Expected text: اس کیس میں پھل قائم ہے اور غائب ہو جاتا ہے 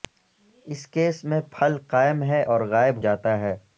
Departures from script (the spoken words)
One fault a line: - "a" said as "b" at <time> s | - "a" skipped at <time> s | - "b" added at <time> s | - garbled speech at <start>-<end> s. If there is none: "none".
- "ہو" skipped at 3.0 s